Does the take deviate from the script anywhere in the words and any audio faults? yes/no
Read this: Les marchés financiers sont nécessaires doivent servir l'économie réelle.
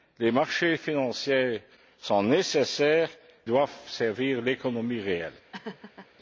yes